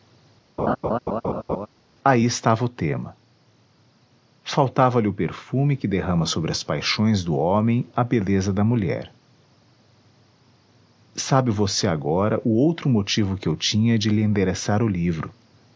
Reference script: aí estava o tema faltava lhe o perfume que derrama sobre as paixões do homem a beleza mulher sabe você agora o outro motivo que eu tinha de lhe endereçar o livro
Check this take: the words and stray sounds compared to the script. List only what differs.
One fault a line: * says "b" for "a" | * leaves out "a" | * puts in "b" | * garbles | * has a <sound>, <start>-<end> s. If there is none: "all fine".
* has a laugh, 0.6-1.7 s
* puts in "da"